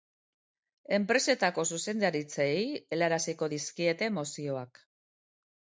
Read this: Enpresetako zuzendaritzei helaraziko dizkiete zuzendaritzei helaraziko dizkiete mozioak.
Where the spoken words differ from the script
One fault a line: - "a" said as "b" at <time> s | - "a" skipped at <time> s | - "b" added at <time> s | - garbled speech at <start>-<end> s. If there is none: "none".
- "zuzendaritzei helaraziko dizkiete" skipped at 4.1 s